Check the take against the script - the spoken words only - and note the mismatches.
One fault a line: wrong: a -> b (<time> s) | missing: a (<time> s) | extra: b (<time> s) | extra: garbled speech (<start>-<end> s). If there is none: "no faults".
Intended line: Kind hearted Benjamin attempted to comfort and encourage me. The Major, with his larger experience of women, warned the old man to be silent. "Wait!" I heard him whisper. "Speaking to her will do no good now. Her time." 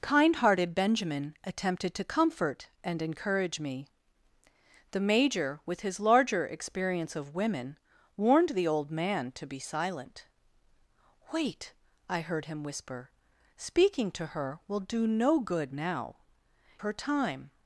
no faults